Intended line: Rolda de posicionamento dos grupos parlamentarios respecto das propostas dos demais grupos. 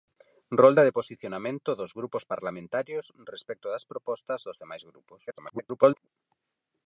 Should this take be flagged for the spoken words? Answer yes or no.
yes